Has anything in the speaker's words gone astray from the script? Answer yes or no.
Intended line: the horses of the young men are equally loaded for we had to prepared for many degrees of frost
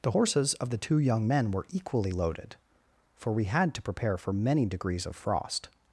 yes